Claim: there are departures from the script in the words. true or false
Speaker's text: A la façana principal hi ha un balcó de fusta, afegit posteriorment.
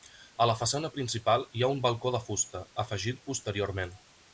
false